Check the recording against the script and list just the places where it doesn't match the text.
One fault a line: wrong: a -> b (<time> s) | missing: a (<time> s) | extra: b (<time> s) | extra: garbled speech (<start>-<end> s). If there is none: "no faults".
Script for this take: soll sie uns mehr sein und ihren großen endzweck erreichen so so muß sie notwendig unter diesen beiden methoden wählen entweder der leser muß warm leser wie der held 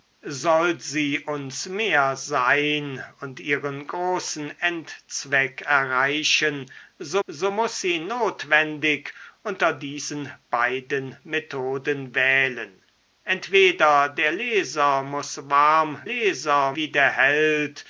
no faults